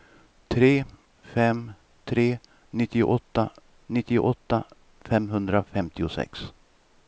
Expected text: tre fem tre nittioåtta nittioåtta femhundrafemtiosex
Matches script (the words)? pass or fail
pass